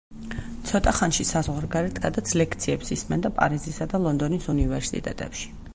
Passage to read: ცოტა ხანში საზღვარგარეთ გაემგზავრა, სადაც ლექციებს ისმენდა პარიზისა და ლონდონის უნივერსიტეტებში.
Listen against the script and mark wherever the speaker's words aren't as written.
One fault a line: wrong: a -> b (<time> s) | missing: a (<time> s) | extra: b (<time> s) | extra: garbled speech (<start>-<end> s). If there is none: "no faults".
missing: გაემგზავრა (2.0 s)